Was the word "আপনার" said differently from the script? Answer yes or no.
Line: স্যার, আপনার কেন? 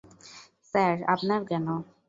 no